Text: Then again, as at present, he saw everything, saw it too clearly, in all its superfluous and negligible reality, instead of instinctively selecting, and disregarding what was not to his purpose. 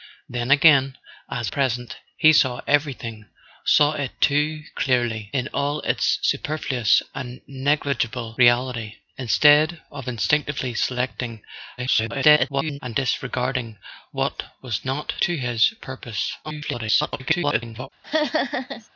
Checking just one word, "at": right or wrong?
wrong